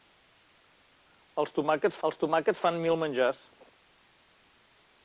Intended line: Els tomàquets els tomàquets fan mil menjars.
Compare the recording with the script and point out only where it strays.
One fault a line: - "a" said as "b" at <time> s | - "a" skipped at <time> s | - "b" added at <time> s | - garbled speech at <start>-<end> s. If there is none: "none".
none